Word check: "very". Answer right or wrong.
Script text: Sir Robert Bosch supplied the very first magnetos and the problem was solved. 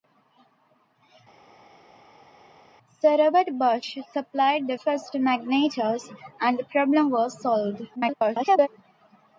wrong